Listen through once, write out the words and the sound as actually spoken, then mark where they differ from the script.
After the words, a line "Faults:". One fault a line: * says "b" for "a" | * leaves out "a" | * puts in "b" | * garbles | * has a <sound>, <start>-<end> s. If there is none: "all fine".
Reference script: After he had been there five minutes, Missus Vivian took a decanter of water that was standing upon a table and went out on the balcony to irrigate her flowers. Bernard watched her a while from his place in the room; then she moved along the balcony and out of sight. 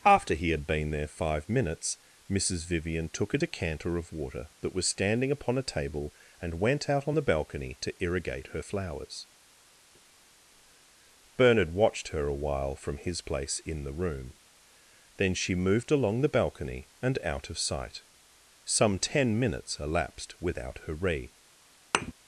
After he had been there five minutes, Missus Vivian took a decanter of water that was standing upon a table and went out on the balcony to irrigate her flowers. Bernard watched her a while from his place in the room; then she moved along the balcony and out of sight. Some ten minutes elapsed without her re
Faults:
* puts in "Some ten minutes elapsed without her re"
* has a thud, 21.9-22.1 s